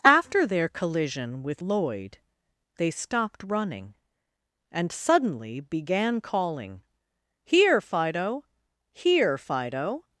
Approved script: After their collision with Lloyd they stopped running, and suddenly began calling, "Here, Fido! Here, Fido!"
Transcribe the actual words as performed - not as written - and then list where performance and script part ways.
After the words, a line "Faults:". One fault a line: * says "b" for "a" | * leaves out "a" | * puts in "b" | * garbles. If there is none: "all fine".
After their collision with Lloyd they stopped running, and suddenly began calling, "Here, Fido! Here, Fido!"
Faults:
all fine